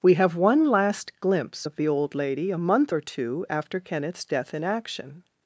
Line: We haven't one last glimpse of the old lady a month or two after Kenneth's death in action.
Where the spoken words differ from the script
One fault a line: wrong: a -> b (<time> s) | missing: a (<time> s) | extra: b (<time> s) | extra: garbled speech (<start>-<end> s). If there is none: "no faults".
wrong: haven't -> have (0.1 s)